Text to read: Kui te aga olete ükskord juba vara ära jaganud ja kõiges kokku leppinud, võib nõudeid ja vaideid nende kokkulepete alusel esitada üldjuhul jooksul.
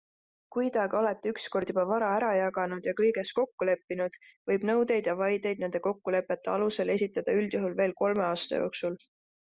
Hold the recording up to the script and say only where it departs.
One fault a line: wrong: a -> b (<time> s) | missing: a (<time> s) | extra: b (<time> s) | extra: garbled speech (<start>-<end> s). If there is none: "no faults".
extra: veel kolme aasta (7.8 s)